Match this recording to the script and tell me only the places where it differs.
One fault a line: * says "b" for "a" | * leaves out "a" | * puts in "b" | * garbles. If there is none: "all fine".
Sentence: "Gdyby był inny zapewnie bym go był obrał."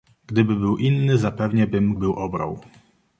* leaves out "go"